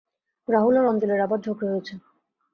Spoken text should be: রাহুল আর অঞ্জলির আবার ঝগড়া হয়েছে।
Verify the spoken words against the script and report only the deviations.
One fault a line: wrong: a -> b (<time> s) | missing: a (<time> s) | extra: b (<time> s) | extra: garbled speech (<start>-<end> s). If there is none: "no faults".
no faults